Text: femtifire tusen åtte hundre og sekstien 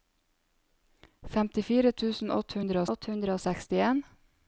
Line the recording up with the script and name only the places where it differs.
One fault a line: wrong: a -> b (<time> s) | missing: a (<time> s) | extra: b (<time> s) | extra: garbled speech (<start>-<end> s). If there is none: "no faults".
extra: åtte hundre (2.9 s)